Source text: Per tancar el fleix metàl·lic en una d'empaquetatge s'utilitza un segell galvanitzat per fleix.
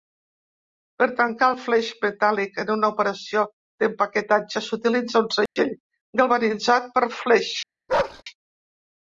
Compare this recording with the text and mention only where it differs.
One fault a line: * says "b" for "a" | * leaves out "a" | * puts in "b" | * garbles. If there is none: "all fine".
* puts in "operació"